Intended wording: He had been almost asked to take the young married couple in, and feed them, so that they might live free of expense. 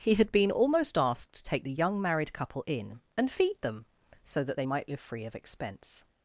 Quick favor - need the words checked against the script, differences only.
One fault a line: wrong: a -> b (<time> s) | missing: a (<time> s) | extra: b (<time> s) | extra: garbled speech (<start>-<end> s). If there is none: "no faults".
no faults